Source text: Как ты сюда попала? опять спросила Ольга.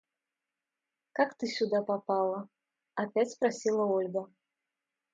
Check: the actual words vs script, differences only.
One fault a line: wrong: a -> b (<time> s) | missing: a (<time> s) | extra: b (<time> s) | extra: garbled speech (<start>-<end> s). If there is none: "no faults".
no faults